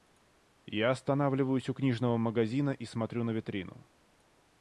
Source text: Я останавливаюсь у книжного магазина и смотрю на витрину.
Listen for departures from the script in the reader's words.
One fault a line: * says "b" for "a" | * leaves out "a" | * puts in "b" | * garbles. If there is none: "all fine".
all fine